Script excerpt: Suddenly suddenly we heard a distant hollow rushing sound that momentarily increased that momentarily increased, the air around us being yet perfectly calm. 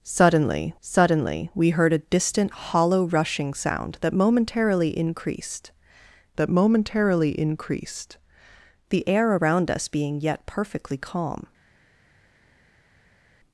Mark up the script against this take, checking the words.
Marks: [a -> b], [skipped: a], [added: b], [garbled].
Suddenly suddenly we heard a distant hollow rushing sound that momentarily increased that momentarily increased, the air around us being yet perfectly calm.